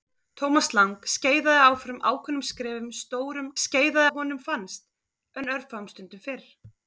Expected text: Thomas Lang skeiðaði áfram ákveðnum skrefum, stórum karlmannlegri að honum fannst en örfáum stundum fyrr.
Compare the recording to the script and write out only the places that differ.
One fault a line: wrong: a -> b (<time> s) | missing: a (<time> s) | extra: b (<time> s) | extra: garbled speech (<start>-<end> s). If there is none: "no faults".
wrong: karlmannlegri -> skeiðaði (3.6 s)